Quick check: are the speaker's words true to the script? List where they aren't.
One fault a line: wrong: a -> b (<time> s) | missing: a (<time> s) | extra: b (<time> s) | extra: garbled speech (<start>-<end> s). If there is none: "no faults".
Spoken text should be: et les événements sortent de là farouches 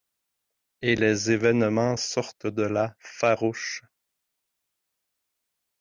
no faults